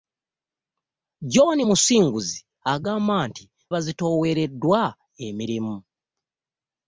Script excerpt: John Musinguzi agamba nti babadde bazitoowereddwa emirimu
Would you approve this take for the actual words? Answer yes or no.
no